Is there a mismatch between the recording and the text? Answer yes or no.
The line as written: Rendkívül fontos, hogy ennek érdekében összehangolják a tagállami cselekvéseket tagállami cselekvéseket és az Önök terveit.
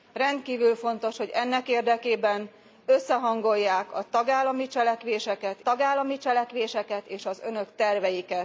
no